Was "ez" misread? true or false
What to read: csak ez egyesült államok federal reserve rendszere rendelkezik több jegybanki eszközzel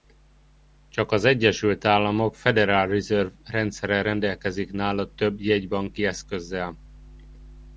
true